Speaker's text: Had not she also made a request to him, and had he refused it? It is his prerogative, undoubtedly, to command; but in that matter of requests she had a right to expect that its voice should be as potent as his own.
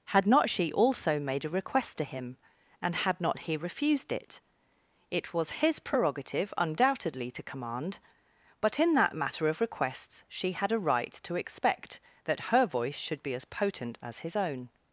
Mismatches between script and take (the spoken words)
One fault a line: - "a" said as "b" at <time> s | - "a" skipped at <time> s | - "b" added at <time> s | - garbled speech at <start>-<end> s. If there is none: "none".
- "not" added at 3.2 s
- "is" said as "was" at 5.3 s
- "its" said as "her" at 12.5 s